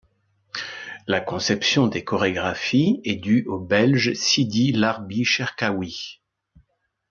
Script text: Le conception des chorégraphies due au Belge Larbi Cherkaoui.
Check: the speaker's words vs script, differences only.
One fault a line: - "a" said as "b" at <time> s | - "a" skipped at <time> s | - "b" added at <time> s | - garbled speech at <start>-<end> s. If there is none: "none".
- "Le" said as "La" at 1.1 s
- "est" added at 3.0 s
- "Sidi" added at 4.1 s